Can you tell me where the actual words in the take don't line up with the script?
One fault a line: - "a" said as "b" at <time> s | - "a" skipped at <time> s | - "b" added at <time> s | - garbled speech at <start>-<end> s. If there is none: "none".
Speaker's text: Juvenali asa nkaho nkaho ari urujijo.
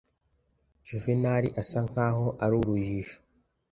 - "nkaho" skipped at 2.3 s